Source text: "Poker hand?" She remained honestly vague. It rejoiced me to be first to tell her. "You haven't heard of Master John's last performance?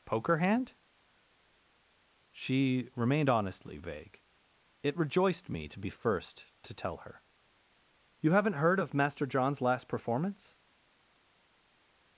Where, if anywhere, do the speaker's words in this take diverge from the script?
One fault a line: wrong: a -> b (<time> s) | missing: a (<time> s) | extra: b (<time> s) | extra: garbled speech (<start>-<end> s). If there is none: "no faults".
no faults